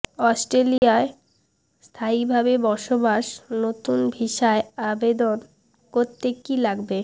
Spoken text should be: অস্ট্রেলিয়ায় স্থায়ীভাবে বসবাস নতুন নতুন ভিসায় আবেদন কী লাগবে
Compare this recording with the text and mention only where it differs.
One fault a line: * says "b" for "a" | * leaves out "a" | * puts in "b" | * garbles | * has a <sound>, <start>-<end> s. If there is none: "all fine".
* has a dropout, 0.8-0.8 s
* leaves out "নতুন"
* puts in "করতে"